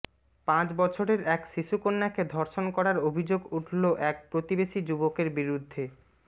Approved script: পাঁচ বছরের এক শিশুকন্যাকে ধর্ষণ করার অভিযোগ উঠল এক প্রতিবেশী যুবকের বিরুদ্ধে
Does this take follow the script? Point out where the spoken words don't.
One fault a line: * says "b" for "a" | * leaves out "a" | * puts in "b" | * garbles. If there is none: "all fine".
all fine